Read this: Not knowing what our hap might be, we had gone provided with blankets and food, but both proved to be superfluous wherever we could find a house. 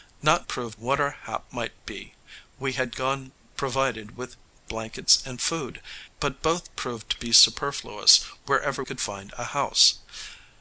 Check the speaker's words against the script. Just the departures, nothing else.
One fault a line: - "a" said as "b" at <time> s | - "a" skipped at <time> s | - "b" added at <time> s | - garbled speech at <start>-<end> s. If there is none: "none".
- "knowing" said as "proved" at 0.5 s
- "we" skipped at 8.8 s